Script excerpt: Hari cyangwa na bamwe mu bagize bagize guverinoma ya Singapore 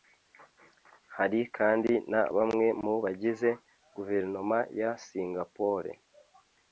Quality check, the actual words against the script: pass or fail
fail